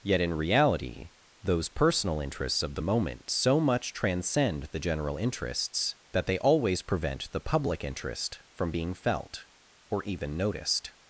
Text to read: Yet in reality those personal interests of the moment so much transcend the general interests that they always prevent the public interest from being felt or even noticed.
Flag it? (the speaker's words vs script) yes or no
no